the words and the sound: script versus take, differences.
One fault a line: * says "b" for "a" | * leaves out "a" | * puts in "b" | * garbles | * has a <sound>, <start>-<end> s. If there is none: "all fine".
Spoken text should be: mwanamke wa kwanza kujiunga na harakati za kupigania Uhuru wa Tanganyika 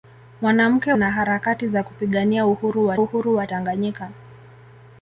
* leaves out "wa kwanza kujiunga"
* puts in "Uhuru wa"